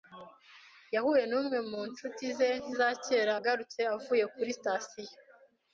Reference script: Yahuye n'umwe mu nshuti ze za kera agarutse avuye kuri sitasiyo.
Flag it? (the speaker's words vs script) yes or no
no